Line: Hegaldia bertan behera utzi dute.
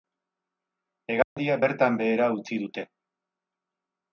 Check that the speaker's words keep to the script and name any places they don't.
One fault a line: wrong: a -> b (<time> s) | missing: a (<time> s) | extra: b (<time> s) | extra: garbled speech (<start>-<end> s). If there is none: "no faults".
no faults